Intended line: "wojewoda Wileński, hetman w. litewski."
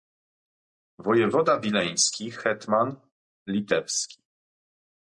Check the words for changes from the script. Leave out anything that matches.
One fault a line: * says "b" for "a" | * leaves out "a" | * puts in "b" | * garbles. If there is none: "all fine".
* leaves out "w"